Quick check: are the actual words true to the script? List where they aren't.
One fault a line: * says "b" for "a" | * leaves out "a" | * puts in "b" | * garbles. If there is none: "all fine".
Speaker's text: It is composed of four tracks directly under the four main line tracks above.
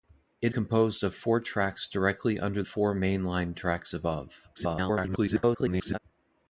* leaves out "is"
* leaves out "the"
* garbles